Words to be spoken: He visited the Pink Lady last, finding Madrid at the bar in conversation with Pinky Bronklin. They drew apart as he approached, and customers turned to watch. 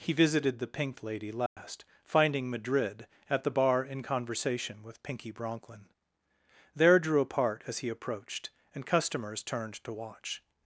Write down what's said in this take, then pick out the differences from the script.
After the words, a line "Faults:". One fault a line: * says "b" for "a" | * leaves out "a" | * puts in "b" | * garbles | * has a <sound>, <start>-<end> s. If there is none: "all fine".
He visited the Pink Lady last, finding Madrid at the bar in conversation with Pinky Bronklin. There drew apart as he approached, and customers turned to watch.
Faults:
* has a dropout, 1.5-1.6 s
* says "There" for "They"